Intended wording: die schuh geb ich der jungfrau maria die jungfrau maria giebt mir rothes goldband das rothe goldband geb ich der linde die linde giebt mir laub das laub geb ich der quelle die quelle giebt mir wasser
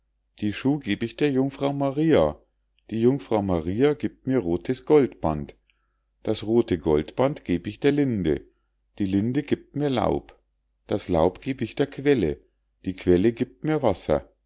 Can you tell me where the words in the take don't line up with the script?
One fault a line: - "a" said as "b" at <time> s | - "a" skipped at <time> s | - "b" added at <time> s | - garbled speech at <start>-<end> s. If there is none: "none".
none